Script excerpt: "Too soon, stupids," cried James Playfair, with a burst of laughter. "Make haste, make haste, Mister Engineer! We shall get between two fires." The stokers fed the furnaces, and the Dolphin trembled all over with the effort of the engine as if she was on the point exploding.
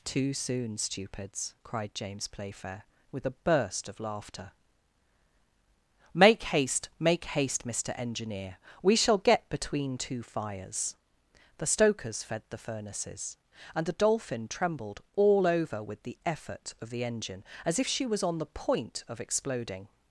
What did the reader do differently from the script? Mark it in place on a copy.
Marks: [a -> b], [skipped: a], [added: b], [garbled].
"Too soon, stupids," cried James Playfair, with a burst of laughter. "Make haste, make haste, Mister Engineer! We shall get between two fires." The stokers fed the furnaces, and the Dolphin trembled all over with the effort of the engine as if she was on the point [added: of] exploding.